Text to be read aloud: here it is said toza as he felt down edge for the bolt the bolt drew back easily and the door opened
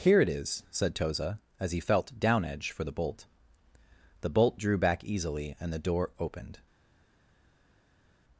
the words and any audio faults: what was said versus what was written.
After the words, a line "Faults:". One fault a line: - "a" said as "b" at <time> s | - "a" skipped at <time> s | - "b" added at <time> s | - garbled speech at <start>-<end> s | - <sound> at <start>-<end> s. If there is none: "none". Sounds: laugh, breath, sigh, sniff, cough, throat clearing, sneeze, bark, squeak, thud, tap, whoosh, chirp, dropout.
here it is said toza as he felt down edge for the bolt the bolt drew back easily and the door opened
Faults:
none